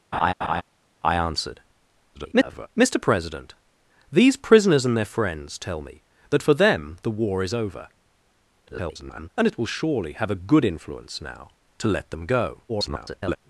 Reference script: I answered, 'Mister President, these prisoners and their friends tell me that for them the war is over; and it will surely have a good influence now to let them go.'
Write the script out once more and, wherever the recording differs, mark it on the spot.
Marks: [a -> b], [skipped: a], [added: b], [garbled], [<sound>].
[laugh] I answered, [garbled] 'Mister President, these prisoners and their friends tell me that for them the war is over; [garbled] and it will surely have a good influence now to let them go.' [garbled]